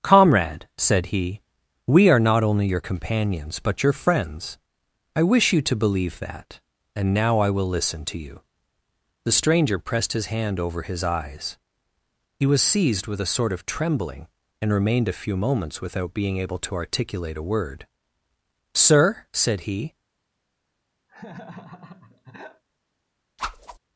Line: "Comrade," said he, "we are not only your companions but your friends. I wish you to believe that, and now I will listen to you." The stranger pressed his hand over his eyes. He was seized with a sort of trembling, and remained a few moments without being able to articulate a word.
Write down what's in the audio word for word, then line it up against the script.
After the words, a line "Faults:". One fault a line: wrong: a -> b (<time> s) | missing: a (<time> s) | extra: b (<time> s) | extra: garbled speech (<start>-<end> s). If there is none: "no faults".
"Comrade," said he, "we are not only your companions but your friends. I wish you to believe that, and now I will listen to you." The stranger pressed his hand over his eyes. He was seized with a sort of trembling, and remained a few moments without being able to articulate a word. "Sir," said he
Faults:
extra: Sir said he (18.7 s)